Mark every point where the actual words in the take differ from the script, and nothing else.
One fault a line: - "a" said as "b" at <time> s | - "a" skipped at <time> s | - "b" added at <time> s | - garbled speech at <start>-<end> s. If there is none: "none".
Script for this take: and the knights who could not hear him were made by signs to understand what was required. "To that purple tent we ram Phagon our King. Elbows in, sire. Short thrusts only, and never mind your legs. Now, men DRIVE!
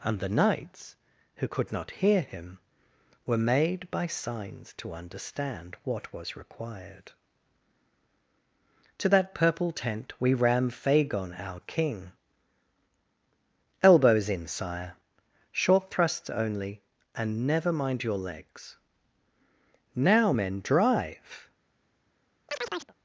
none